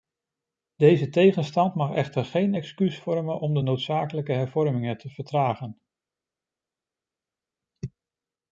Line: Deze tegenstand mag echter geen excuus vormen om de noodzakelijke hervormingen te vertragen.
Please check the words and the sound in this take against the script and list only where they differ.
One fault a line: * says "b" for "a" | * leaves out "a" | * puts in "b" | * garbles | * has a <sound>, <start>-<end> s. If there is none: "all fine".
all fine